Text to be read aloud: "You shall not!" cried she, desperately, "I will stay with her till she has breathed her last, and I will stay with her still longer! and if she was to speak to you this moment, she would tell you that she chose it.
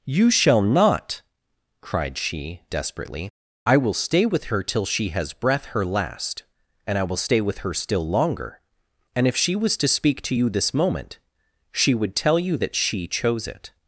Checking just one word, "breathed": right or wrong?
wrong